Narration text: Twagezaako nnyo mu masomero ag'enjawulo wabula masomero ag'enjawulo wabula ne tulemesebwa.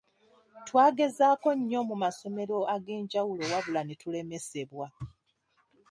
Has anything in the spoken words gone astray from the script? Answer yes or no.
yes